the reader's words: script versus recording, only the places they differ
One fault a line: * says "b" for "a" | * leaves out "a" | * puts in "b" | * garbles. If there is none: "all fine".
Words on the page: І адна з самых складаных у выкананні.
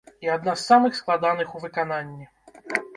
all fine